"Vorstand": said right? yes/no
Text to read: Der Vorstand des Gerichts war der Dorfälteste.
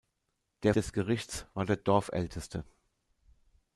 no